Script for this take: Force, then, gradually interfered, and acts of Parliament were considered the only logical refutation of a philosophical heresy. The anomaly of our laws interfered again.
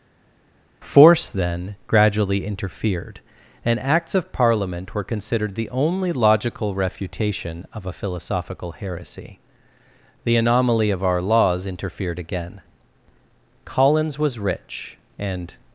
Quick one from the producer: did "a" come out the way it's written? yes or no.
yes